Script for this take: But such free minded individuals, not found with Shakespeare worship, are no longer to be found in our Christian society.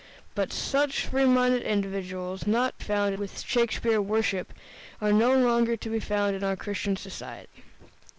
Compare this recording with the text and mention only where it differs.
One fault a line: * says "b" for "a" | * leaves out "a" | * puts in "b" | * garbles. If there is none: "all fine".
all fine